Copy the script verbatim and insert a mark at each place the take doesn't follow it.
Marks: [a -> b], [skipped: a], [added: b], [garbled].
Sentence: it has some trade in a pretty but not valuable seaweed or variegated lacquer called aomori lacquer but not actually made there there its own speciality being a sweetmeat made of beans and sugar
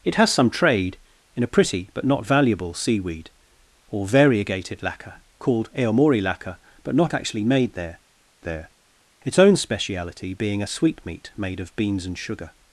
it has some trade in a pretty but not valuable seaweed or variegated lacquer called aomori lacquer but not actually made there there its own speciality being a sweetmeat made of beans and sugar